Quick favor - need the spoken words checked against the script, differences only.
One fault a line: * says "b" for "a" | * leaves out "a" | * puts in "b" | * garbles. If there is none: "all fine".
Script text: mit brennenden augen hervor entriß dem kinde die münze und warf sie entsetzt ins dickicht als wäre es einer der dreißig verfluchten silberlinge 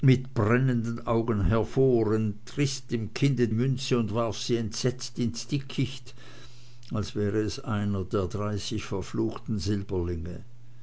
* leaves out "die"